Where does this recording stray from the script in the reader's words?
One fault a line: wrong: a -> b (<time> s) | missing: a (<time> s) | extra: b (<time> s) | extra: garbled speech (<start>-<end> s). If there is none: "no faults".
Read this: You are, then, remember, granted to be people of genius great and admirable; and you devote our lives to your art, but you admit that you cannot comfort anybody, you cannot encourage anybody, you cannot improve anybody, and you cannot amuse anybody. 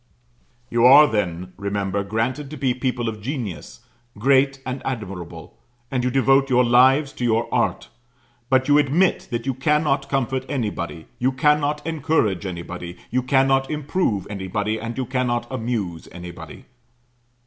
wrong: our -> your (6.5 s)